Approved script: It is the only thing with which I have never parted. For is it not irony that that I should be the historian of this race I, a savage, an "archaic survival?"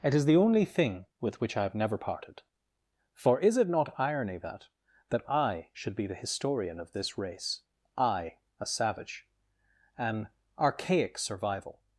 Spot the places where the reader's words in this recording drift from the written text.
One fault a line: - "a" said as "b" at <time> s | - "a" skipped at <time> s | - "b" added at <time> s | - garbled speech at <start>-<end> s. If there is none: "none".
none